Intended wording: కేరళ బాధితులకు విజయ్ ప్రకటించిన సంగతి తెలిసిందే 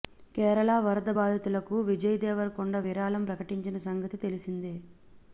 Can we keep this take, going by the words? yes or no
no